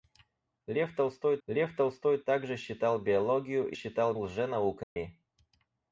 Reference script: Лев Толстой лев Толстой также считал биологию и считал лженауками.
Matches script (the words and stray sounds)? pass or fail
fail